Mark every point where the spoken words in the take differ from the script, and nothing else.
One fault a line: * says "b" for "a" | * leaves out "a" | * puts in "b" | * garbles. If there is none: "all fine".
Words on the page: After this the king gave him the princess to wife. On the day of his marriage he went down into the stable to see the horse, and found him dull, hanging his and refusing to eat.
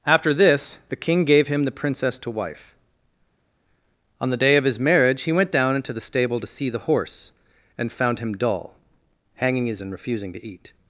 all fine